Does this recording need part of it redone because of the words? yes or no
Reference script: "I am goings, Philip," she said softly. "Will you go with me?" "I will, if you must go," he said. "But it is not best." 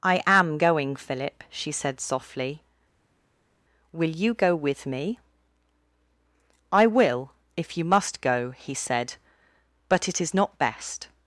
yes